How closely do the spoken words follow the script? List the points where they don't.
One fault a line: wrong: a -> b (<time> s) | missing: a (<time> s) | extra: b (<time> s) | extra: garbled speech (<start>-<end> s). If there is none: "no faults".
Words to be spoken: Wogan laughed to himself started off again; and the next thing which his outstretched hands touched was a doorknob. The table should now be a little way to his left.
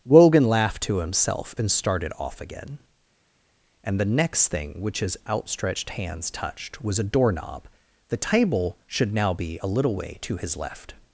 extra: and (1.6 s)